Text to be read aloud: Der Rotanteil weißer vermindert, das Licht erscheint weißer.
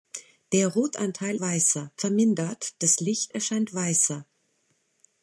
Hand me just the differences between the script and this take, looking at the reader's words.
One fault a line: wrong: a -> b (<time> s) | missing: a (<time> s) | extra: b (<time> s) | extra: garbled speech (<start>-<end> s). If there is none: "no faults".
no faults